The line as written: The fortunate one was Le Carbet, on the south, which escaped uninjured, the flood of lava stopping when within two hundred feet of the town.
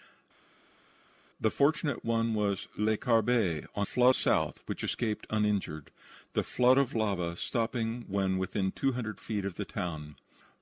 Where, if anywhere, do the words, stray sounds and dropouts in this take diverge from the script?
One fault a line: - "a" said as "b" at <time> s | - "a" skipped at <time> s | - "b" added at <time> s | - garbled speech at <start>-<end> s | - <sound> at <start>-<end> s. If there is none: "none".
- "the" said as "flood" at 3.8 s